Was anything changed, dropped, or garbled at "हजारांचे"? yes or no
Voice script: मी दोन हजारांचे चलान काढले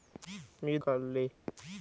yes